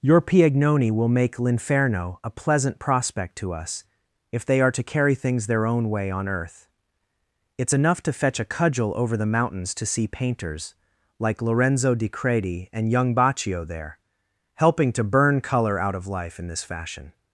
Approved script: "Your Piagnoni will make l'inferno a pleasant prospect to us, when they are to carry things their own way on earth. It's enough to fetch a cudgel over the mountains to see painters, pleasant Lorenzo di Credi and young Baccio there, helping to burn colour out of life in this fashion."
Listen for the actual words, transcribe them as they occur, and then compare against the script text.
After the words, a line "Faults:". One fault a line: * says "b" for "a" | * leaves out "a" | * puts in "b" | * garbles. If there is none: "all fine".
"Your Piagnoni will make l'inferno a pleasant prospect to us, if they are to carry things their own way on earth. It's enough to fetch a cudgel over the mountains to see painters, like Lorenzo di Credi and young Baccio there, helping to burn colour out of life in this fashion."
Faults:
* says "if" for "when"
* says "like" for "pleasant"